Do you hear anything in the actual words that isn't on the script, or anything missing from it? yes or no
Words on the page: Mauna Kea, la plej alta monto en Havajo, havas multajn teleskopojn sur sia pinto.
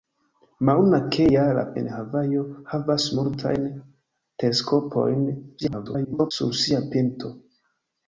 yes